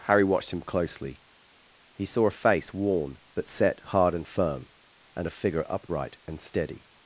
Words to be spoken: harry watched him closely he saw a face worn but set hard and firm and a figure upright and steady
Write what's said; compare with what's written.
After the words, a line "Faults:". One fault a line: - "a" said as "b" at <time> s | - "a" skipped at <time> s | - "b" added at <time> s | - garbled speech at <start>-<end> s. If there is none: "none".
harry watched him closely he saw a face worn but set hard and firm and a figure upright and steady
Faults:
none